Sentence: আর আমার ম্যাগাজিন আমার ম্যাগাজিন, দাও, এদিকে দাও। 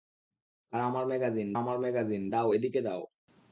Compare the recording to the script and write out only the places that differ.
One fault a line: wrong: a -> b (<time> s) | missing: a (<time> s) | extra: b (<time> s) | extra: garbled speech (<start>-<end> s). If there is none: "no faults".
no faults